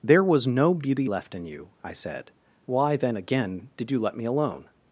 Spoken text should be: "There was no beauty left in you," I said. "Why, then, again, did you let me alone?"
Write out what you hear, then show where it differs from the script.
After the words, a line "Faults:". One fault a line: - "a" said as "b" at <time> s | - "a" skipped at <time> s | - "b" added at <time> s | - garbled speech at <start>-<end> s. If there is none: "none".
"There was no beauty left in you," I said. "Why, then, again, did you let me alone?"
Faults:
none